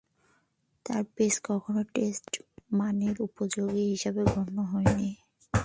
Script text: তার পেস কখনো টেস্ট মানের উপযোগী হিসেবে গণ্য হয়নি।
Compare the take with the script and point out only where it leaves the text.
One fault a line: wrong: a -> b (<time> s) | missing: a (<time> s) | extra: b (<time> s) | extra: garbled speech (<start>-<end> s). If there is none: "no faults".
no faults